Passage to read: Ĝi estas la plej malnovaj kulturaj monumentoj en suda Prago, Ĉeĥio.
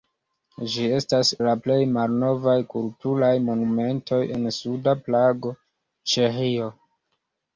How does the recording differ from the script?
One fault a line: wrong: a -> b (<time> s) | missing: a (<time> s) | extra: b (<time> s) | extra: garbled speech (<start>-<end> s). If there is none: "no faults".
no faults